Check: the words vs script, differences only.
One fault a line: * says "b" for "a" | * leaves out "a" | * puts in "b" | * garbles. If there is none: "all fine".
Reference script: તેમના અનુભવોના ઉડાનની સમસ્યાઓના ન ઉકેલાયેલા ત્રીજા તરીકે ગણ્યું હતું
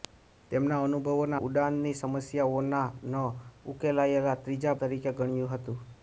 all fine